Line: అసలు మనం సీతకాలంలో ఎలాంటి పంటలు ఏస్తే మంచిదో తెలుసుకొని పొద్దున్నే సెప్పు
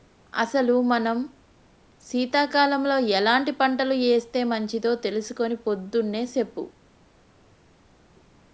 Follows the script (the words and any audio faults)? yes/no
yes